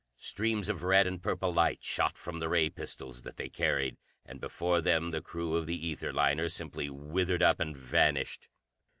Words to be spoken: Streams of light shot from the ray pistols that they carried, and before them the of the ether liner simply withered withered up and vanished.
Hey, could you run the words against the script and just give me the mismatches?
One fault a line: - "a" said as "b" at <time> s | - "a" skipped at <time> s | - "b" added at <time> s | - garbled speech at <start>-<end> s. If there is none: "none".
- "red and purple" added at 0.8 s
- "crew" added at 5.2 s
- "withered" skipped at 7.4 s